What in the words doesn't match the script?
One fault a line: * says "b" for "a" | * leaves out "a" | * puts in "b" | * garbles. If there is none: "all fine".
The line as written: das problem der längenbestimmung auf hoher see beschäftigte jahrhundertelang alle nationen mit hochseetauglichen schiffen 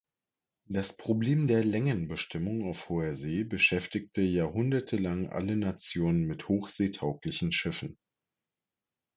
all fine